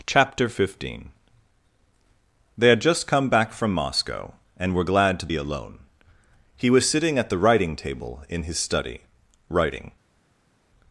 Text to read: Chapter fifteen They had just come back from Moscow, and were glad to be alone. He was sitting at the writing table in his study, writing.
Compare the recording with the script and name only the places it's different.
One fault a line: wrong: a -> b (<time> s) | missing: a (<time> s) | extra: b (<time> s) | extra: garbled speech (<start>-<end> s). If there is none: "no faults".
no faults